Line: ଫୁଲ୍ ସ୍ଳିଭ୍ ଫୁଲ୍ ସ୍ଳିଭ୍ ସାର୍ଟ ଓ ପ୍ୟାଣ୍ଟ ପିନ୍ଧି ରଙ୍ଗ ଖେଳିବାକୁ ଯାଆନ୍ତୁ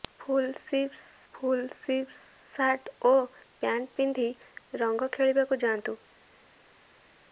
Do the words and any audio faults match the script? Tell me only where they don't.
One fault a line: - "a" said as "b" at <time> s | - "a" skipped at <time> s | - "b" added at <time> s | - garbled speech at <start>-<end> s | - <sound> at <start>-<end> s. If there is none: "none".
none